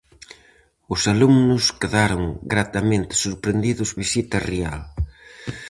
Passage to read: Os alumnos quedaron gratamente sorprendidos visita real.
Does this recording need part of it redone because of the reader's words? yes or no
no